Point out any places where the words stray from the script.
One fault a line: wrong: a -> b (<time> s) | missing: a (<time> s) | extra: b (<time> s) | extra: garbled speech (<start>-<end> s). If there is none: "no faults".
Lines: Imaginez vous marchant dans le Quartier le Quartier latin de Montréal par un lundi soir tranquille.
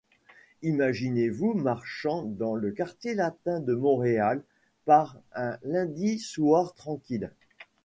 missing: le Quartier (3.2 s)